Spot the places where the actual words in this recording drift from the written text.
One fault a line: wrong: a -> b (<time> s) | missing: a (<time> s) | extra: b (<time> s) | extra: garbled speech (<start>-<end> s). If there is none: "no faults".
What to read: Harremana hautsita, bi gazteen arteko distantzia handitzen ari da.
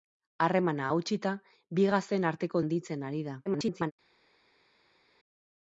missing: distantzia (2.6 s)
extra: garbled speech (3.5-3.9 s)